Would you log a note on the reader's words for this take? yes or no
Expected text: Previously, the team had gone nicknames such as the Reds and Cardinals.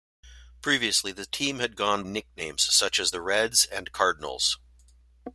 no